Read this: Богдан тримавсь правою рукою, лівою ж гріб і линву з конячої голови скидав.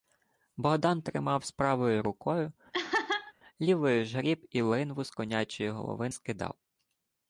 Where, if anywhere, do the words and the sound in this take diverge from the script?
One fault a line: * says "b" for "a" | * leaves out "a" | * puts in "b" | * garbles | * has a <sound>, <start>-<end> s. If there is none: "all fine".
* has a laugh, 2.7-3.3 s